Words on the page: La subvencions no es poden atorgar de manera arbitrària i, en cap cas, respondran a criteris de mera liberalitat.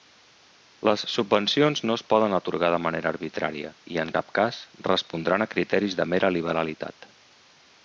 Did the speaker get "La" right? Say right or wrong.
wrong